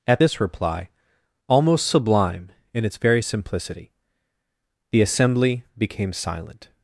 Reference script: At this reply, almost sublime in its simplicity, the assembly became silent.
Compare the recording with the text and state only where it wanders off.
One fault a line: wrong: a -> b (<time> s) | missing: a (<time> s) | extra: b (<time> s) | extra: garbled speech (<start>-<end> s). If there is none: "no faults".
extra: very (3.0 s)